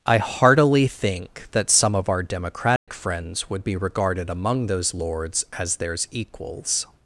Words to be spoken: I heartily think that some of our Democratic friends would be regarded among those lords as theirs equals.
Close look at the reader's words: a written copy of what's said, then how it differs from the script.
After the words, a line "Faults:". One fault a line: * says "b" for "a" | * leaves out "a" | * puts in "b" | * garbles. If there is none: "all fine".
I heartily think that some of our Democratic friends would be regarded among those lords as theirs equals.
Faults:
all fine